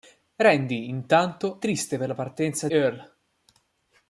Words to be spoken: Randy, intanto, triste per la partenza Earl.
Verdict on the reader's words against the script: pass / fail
pass